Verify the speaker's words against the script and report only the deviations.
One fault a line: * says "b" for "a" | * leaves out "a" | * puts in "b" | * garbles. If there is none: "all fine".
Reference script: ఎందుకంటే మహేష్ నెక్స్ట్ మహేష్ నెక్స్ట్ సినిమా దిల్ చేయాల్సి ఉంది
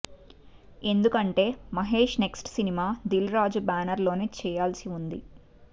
* says "సినిమా దిల్ రాజు బ్యానర్ లోనే" for "మహేష్ నెక్స్ట్ సినిమా దిల్"